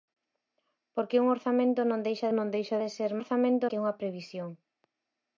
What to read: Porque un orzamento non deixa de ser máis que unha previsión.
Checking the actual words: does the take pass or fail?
fail